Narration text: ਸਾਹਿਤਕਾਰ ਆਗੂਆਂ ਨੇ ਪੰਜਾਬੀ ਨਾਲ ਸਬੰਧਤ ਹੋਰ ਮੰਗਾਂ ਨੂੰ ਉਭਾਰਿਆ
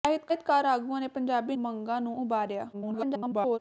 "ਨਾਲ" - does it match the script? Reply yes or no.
no